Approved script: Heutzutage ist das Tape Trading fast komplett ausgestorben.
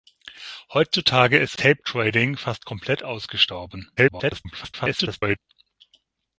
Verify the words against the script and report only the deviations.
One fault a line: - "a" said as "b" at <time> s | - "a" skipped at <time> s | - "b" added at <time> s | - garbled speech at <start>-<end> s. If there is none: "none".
- "das" skipped at 1.6 s
- garbled speech at 4.0-5.4 s